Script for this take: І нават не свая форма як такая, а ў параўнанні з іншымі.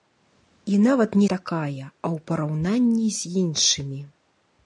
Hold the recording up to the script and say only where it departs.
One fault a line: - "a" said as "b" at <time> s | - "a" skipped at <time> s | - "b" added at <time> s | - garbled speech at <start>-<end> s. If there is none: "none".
- "свая форма як" skipped at 1.3 s